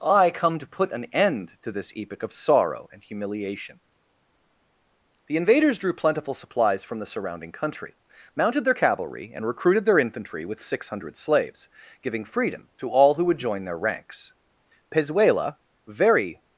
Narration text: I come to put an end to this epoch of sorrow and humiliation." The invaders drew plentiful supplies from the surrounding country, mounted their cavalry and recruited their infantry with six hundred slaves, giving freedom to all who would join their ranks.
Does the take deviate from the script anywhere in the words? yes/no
yes